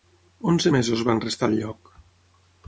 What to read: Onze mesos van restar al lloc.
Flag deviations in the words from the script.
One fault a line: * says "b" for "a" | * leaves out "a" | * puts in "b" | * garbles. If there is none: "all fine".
all fine